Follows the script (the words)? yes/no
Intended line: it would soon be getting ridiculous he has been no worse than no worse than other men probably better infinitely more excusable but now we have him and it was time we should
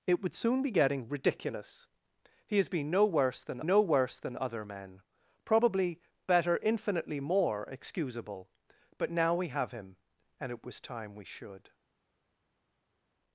yes